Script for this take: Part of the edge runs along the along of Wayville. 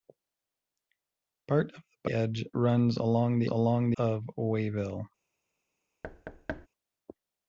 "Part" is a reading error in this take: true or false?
false